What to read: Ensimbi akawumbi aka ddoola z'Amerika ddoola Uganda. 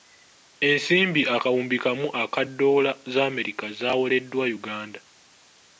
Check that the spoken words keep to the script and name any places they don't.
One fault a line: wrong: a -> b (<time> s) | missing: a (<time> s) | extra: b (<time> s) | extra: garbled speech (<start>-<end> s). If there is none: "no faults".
extra: kamu (1.8 s)
wrong: ddoola -> zaawoleddwa (3.8 s)